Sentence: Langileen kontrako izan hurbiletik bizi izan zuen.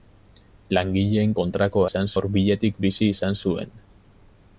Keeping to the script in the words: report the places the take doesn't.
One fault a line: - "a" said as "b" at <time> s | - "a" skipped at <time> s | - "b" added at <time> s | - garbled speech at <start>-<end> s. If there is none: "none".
none